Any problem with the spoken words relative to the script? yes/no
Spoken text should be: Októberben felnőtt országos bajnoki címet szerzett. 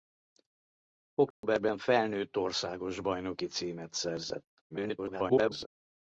yes